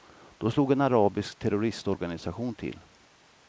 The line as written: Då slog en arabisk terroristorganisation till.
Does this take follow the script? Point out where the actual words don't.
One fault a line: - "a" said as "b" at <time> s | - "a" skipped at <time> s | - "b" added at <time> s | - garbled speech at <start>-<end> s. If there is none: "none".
none